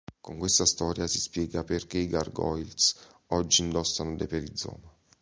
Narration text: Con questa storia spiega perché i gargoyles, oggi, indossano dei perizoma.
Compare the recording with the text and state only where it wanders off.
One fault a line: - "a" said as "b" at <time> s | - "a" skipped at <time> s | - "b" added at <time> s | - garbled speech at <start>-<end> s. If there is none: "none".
- "si" added at 1.1 s